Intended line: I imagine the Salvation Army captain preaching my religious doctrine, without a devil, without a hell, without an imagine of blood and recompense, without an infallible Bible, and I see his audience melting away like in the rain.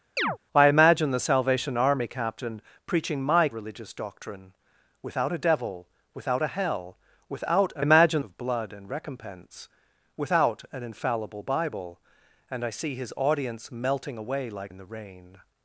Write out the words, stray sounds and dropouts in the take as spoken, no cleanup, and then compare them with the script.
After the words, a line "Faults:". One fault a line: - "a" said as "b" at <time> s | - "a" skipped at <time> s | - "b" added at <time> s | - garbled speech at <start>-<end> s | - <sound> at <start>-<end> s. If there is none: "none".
I imagine the Salvation Army captain preaching my religious doctrine, without a devil, without a hell, without an imagine of blood and recompense, without an infallible Bible, and I see his audience melting away like in the rain.
Faults:
- chirp at 0.2-0.4 s